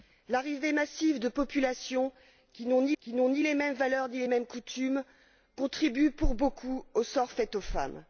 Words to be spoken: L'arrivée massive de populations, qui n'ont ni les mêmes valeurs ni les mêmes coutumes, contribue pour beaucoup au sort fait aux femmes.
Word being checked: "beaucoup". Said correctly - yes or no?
yes